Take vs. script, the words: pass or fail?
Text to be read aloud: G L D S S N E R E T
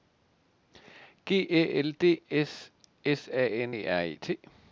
fail